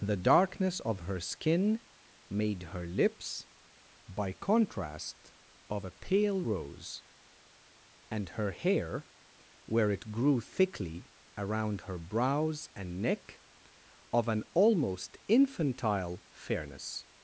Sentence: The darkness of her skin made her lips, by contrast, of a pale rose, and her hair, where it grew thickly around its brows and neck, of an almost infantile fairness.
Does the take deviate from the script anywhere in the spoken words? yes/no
yes